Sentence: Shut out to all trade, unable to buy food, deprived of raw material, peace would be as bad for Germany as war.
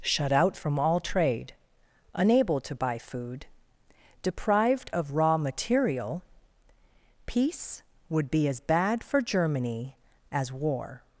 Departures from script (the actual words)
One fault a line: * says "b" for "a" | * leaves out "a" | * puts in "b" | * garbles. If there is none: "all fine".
* says "from" for "to"